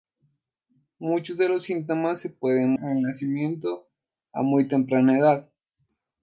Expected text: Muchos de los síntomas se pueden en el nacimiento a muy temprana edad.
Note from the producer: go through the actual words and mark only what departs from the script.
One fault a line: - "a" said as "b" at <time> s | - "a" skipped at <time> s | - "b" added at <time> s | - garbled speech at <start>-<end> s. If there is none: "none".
none